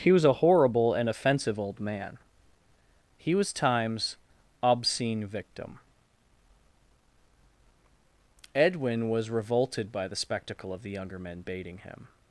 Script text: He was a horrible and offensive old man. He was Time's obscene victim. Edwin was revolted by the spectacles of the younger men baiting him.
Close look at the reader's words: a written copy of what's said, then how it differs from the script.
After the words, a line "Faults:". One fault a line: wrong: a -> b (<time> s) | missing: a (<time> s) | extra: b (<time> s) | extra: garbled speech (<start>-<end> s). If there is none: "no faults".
He was a horrible and offensive old man. He was Time's obscene victim. Edwin was revolted by the spectacle of the younger men baiting him.
Faults:
wrong: spectacles -> spectacle (10.2 s)